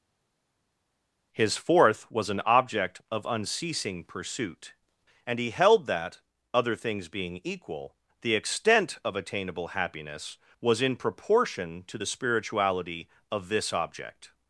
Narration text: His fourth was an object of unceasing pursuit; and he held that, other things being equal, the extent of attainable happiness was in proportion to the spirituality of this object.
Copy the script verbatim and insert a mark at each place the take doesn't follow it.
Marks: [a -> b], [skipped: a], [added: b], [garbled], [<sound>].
His fourth was an object of unceasing pursuit; and he held that, other things being equal, the extent of attainable happiness was in proportion to the spirituality of this object.